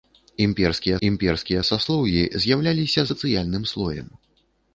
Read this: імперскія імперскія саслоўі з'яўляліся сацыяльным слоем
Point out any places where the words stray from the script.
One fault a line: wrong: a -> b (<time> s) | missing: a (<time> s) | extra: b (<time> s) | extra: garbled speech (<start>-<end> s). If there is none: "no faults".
no faults